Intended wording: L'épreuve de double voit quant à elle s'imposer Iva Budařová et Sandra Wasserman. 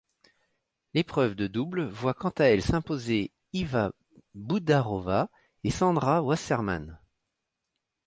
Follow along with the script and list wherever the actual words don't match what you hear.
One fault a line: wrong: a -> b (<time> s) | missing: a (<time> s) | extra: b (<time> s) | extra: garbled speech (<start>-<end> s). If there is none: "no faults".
no faults